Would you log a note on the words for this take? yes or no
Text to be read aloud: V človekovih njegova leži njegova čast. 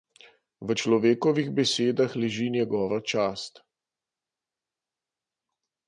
yes